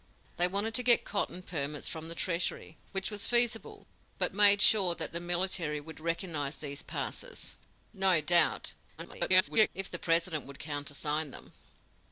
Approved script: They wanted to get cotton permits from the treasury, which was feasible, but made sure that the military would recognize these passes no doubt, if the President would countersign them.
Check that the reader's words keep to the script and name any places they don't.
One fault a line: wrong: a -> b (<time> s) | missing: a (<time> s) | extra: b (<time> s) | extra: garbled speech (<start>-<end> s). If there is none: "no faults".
extra: garbled speech (9.0-9.7 s)